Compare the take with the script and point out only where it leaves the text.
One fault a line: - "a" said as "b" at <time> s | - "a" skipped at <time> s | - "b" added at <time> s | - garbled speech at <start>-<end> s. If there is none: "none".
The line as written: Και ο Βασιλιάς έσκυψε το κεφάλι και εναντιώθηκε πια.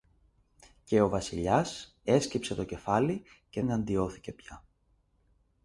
none